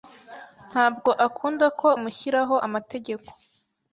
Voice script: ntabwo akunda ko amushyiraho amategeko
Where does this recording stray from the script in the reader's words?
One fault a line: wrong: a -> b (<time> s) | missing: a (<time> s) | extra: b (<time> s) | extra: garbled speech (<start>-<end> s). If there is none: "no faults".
no faults